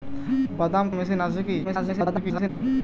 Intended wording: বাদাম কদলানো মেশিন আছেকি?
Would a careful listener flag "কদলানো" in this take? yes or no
yes